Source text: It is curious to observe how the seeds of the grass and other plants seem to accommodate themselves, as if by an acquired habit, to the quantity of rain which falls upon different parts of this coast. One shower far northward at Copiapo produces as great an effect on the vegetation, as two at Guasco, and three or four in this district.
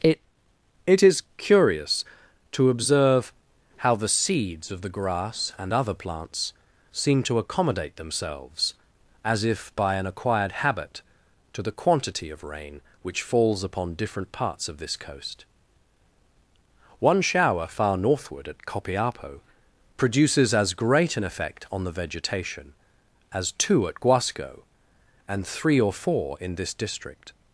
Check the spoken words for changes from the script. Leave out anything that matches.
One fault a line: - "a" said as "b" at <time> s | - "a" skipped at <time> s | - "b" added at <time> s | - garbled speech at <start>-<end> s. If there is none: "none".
- "it" added at 0.8 s